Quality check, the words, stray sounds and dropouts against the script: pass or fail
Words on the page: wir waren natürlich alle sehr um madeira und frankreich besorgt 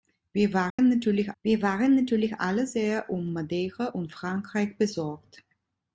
fail